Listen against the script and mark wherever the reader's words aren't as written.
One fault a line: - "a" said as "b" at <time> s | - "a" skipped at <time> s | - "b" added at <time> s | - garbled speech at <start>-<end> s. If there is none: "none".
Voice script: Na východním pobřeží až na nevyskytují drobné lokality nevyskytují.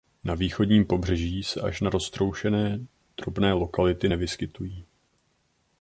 - "se" added at 1.4 s
- "nevyskytují" said as "roztroušené" at 1.9 s